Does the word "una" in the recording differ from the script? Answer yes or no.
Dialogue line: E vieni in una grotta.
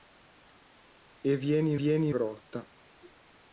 yes